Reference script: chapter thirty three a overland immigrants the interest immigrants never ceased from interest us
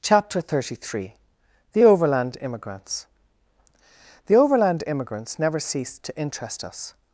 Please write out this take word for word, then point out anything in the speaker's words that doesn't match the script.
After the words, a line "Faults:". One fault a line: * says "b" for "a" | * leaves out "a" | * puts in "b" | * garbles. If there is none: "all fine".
chapter thirty three the overland immigrants the overland immigrants never ceased to interest us
Faults:
* says "the" for "a"
* says "overland" for "interest"
* says "to" for "from"